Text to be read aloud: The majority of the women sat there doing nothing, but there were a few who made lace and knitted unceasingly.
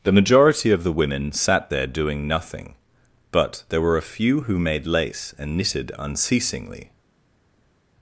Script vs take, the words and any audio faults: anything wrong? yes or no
no